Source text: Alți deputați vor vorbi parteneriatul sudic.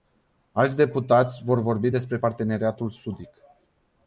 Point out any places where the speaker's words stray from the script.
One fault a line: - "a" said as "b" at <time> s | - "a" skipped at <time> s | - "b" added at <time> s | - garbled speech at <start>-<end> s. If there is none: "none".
- "despre" added at 1.9 s